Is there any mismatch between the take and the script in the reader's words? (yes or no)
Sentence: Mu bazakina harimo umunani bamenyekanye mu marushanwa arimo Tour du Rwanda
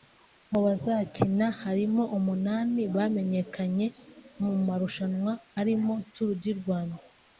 no